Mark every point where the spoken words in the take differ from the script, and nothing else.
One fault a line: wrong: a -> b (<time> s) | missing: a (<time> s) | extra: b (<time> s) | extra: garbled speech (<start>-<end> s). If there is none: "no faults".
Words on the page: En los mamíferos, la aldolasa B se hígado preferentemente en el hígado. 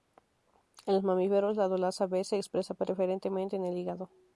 wrong: hígado -> expresa (2.4 s)